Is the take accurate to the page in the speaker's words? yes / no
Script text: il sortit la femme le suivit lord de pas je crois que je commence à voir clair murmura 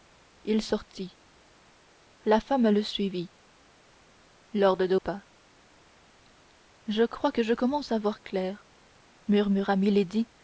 yes